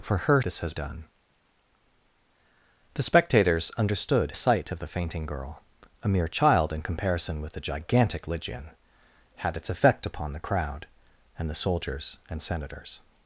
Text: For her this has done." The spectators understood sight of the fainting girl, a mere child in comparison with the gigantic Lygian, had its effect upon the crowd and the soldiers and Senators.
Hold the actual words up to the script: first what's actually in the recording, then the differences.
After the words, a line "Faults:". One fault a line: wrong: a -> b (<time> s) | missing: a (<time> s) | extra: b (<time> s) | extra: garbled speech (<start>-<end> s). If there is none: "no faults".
For her this has done." The spectators understood sight of the fainting girl, a mere child in comparison with the gigantic Lygian, had its effect upon the crowd and the soldiers and Senators.
Faults:
no faults